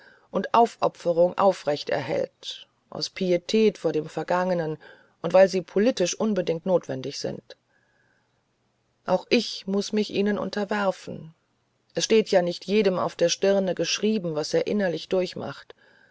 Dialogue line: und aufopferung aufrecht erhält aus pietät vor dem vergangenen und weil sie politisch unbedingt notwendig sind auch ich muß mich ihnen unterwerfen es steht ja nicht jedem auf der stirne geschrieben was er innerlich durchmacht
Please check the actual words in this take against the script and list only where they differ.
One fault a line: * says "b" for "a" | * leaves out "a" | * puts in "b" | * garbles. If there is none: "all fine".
all fine